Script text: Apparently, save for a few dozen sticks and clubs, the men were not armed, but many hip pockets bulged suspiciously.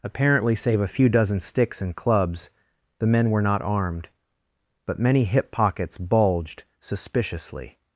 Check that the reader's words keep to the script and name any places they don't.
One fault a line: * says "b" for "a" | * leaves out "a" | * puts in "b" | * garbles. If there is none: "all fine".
* leaves out "for"